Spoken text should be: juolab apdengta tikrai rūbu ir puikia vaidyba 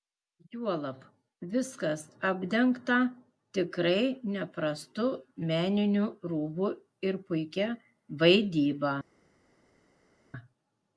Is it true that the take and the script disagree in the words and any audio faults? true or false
true